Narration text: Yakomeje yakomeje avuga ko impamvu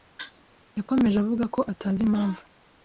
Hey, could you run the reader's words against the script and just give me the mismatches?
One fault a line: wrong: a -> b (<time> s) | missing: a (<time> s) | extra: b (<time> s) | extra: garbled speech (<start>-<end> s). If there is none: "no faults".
missing: yakomeje (1.2 s)
extra: atazi (1.7 s)